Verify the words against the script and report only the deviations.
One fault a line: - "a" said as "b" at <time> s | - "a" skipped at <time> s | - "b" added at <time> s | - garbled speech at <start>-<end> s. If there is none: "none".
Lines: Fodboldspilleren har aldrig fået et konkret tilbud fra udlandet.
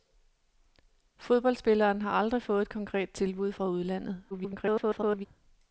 - garbled speech at 4.3-5.3 s